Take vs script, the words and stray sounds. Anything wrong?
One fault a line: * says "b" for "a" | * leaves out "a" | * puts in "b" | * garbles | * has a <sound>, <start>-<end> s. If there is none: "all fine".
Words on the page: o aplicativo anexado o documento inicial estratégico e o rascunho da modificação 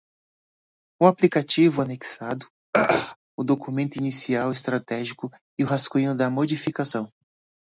* has a throat clearing, 2.7-3.2 s